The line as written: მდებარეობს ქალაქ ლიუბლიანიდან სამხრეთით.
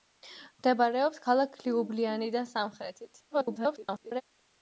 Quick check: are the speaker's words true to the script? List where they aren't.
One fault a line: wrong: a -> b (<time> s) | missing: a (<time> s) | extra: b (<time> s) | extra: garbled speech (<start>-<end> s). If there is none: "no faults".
extra: garbled speech (3.3-4.2 s)